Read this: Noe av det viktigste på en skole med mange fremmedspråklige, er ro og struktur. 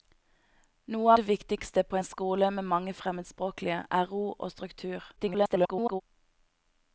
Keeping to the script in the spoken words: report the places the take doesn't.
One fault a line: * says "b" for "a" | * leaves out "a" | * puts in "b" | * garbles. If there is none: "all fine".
* leaves out "av"
* garbles